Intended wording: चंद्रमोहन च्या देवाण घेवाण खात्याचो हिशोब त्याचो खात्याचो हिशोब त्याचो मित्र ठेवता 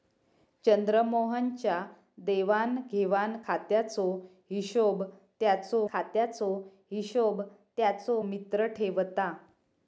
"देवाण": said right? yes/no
yes